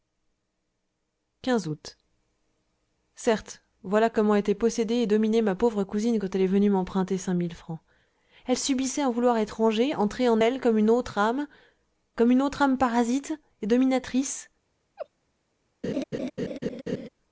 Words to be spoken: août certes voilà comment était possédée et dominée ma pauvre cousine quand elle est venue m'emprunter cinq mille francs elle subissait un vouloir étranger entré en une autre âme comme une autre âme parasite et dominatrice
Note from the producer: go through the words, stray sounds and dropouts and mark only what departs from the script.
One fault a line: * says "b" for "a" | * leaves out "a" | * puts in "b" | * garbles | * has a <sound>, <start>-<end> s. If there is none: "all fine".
* puts in "elle comme"
* has a laugh, 15.0-15.1 s
* has a laugh, 15.8-17.1 s